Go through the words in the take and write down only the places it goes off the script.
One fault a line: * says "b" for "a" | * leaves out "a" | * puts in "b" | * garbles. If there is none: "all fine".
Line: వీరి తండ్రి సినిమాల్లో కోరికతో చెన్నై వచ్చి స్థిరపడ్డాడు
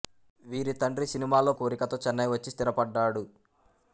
all fine